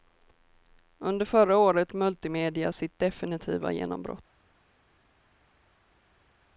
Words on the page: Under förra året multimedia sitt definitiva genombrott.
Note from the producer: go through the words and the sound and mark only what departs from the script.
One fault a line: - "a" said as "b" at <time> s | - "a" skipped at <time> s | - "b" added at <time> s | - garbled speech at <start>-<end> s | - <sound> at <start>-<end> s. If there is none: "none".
none